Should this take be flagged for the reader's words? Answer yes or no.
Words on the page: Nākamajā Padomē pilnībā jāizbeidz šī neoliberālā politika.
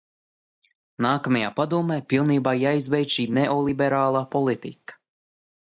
no